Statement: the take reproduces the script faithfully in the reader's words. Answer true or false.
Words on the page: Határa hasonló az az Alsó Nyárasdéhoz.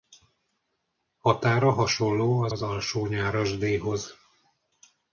true